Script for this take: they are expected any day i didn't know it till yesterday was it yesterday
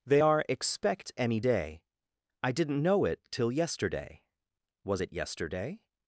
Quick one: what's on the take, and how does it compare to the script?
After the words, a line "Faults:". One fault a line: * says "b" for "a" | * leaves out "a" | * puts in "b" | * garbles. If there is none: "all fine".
they are expect any day i didn't know it till yesterday was it yesterday
Faults:
* says "expect" for "expected"